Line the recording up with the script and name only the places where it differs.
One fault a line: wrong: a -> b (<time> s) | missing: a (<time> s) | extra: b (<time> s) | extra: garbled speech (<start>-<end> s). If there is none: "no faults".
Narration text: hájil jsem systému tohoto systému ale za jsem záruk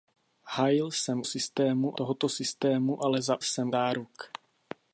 no faults